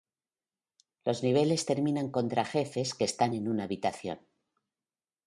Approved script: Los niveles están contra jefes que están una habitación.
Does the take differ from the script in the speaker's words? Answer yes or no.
yes